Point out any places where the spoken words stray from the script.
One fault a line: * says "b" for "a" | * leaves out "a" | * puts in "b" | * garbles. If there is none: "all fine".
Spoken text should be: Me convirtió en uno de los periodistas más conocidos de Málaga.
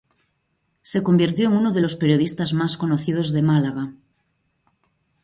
* says "Se" for "Me"